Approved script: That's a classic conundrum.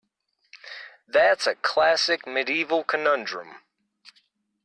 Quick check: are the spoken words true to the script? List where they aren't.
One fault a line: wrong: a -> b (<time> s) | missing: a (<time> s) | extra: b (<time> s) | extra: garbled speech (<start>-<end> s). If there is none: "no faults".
extra: medieval (2.2 s)